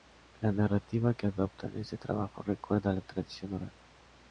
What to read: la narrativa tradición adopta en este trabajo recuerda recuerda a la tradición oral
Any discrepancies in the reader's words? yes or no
yes